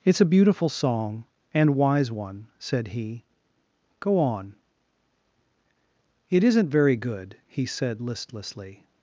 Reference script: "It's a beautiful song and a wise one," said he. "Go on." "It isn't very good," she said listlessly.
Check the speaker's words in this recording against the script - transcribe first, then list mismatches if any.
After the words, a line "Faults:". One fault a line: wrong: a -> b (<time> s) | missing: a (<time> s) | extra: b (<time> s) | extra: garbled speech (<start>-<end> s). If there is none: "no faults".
"It's a beautiful song and wise one," said he. "Go on." "It isn't very good," he said listlessly.
Faults:
missing: a (1.8 s)
wrong: she -> he (7.5 s)